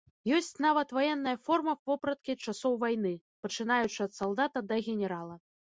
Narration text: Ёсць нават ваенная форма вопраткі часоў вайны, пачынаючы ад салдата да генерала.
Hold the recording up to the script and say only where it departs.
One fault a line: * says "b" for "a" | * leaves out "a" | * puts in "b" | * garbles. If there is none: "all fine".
all fine